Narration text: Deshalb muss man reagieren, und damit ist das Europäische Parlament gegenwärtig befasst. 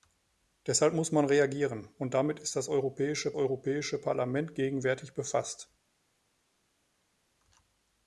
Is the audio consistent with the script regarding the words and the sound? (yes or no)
no